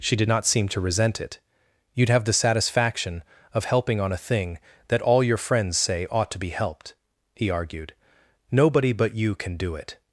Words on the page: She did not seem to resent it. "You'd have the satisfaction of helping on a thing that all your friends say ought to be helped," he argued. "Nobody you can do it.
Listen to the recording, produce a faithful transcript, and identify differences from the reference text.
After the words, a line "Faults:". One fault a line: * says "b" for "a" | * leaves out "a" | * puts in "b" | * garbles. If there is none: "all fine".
She did not seem to resent it. "You'd have the satisfaction of helping on a thing that all your friends say ought to be helped," he argued. "Nobody but you can do it.
Faults:
* puts in "but"